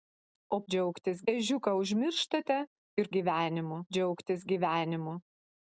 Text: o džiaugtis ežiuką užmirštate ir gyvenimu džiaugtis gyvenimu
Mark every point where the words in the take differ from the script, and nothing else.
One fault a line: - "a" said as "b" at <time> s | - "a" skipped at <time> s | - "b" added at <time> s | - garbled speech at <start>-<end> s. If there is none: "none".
none